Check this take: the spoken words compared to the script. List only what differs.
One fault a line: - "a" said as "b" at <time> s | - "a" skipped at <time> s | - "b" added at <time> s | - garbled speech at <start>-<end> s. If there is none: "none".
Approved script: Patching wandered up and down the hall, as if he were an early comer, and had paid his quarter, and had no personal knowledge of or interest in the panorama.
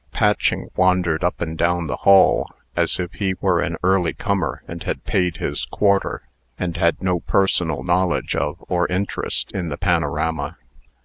none